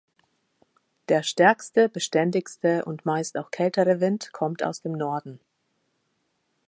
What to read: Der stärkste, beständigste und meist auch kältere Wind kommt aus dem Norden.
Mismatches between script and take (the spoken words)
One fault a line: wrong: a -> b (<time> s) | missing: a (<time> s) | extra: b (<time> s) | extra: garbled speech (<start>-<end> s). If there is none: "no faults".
no faults